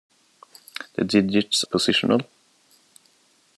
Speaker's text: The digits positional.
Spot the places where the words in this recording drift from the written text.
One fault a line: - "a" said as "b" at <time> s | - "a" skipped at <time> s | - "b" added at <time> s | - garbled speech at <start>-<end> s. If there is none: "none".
none